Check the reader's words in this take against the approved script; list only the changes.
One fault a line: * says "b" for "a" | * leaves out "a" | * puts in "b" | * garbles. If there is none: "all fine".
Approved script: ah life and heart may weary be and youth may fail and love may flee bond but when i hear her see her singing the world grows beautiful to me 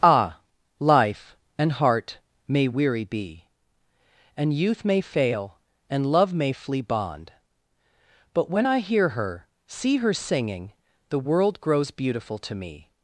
all fine